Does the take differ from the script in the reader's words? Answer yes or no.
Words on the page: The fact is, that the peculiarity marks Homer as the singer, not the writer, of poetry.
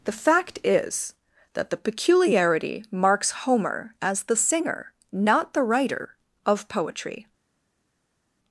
no